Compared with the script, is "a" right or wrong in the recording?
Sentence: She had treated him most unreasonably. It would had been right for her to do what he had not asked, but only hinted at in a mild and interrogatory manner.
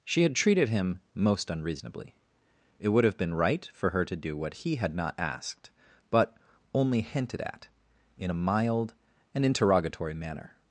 right